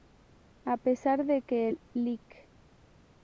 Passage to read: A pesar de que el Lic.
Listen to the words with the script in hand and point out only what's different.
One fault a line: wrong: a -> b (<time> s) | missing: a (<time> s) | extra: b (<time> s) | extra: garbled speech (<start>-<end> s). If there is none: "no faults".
no faults